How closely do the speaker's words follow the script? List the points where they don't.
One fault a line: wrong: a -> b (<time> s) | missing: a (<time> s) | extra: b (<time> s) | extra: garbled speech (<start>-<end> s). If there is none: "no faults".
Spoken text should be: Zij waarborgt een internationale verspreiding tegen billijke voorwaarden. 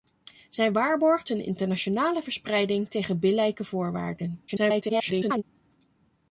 extra: garbled speech (4.5-5.4 s)